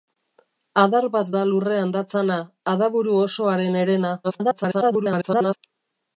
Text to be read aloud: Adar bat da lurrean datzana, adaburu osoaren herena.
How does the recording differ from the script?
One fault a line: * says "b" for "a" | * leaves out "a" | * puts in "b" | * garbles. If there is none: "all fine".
* garbles